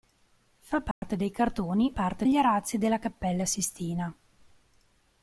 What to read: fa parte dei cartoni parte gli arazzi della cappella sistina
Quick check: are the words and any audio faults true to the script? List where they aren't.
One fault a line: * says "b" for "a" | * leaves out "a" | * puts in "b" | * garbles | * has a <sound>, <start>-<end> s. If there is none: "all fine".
* has a dropout, 0.9-1.0 s